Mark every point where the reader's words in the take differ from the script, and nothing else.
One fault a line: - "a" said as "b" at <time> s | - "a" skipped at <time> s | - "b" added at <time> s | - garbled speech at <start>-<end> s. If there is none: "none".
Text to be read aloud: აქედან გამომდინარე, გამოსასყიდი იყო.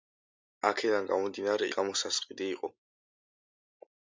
none